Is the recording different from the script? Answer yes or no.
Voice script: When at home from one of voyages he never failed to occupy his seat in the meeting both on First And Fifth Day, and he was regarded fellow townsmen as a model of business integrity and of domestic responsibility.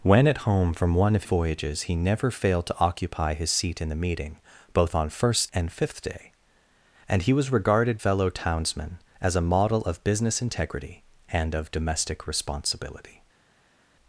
no